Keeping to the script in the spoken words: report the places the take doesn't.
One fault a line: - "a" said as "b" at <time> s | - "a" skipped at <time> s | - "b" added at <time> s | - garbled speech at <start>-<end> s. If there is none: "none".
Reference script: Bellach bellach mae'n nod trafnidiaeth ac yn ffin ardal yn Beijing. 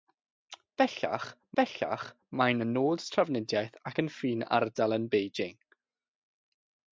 none